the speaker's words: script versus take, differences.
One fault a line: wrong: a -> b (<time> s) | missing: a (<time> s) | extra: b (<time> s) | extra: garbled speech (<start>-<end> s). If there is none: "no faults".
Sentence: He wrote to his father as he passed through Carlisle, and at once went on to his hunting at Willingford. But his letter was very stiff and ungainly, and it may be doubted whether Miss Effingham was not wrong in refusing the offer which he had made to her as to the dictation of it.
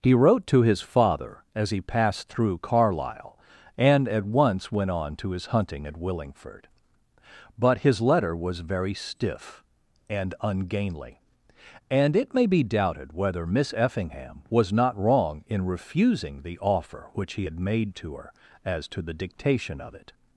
no faults